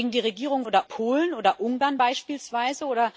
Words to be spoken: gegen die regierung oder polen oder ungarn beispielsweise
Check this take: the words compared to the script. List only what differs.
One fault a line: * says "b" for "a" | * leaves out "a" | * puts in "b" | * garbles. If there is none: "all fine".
all fine